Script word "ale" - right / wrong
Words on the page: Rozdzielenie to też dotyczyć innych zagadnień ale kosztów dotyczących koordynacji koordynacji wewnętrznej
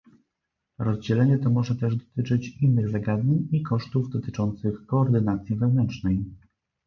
wrong